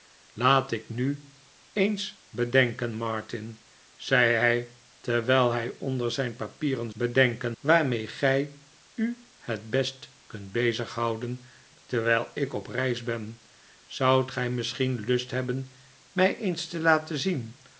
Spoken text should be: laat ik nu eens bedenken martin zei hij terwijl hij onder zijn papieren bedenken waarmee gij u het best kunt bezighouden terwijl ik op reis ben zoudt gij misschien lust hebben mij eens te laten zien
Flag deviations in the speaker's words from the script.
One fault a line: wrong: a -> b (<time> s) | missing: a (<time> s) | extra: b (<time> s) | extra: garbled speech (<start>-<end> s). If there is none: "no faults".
no faults